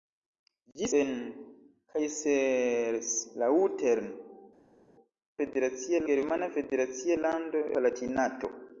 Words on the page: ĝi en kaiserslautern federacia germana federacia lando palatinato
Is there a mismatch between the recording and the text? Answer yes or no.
no